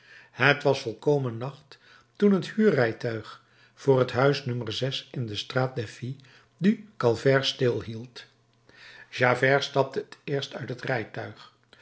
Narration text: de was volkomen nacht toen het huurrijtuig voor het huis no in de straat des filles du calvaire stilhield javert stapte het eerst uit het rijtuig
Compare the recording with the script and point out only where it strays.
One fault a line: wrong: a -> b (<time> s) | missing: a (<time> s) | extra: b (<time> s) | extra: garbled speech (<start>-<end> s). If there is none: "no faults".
wrong: de -> het (0.3 s)